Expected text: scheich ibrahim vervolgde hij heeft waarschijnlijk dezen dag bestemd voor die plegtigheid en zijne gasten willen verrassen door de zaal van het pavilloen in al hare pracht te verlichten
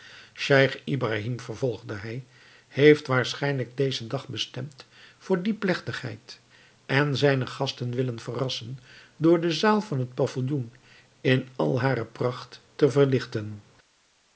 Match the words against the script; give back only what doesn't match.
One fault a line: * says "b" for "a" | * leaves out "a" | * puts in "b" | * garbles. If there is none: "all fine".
all fine